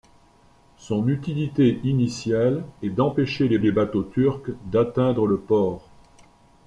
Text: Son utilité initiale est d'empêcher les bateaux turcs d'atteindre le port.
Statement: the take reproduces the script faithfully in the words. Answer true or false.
false